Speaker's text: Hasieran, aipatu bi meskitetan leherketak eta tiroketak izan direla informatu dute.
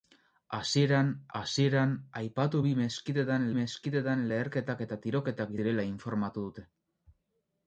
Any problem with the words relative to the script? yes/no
yes